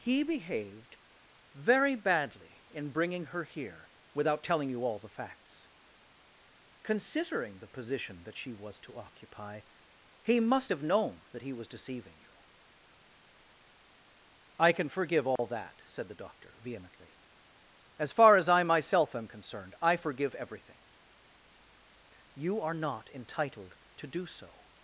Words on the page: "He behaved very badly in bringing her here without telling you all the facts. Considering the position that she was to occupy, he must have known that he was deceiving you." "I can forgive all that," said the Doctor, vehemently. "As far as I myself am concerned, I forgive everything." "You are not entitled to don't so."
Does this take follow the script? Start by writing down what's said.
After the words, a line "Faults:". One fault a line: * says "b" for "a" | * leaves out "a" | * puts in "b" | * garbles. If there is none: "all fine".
"He behaved very badly in bringing her here without telling you all the facts. Considering the position that she was to occupy, he must have known that he was deceiving you." "I can forgive all that," said the Doctor, vehemently. "As far as I myself am concerned, I forgive everything." "You are not entitled to do so."
Faults:
* says "do" for "don't"